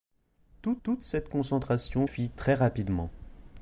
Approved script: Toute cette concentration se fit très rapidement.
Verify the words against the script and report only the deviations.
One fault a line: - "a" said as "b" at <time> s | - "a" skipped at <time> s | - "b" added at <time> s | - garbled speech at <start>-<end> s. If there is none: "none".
- "toute" added at 0.8 s
- "se" skipped at 2.1 s